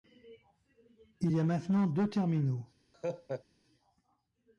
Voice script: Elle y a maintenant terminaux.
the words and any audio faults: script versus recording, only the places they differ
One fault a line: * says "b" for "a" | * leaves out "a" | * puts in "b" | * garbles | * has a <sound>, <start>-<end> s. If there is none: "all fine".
* says "Il" for "Elle"
* puts in "deux"
* has a laugh, 2.9-3.4 s